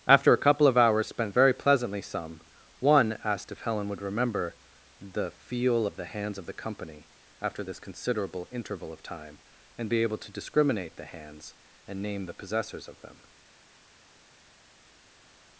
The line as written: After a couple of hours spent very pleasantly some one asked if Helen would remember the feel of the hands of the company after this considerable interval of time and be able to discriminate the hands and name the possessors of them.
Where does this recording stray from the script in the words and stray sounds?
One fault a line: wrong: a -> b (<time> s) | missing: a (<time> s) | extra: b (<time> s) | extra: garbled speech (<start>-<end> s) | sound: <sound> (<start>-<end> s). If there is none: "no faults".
no faults